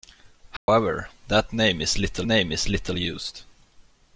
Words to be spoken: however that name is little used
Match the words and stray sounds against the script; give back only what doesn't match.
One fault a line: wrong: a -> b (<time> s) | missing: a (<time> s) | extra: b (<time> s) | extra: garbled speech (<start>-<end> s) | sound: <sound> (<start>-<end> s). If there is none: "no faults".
sound: dropout (0.6-0.7 s)
extra: name is little (2.2 s)